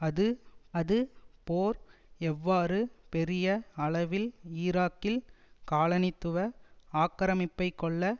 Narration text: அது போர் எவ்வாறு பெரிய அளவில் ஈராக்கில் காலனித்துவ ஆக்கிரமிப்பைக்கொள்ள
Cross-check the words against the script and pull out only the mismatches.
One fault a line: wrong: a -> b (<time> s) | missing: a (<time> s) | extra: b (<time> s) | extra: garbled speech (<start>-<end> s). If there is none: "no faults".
extra: அது (0.7 s)